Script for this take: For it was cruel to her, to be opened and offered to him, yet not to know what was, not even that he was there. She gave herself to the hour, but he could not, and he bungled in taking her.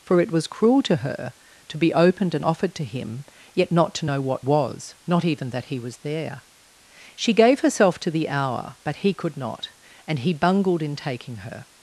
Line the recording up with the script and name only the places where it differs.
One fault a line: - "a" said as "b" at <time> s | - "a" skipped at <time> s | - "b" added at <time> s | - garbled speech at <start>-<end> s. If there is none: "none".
none